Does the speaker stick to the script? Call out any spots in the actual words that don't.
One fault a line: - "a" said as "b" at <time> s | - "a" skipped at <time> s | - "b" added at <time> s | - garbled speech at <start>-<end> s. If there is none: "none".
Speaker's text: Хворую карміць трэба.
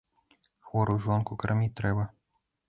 - "жонку" added at 1.1 s